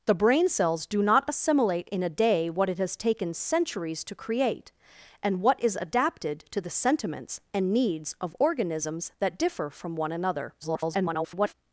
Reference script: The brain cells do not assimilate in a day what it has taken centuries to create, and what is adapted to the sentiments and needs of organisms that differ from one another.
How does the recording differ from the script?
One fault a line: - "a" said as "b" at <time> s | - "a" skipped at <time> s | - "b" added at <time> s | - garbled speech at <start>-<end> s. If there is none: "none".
- garbled speech at 10.6-11.5 s